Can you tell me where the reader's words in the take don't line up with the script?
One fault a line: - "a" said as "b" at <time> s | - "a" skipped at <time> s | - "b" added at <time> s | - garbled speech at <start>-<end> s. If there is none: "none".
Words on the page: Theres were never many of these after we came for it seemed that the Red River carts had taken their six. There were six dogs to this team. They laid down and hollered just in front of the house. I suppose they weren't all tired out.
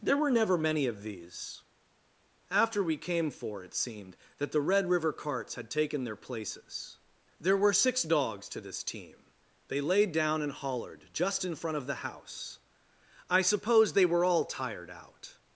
- "Theres" said as "There" at 0.0 s
- "six" said as "places" at 6.2 s
- "weren't" said as "were" at 14.1 s